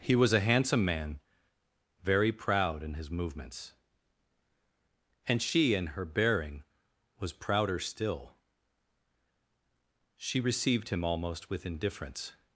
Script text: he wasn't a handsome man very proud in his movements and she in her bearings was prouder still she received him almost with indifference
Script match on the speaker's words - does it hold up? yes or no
no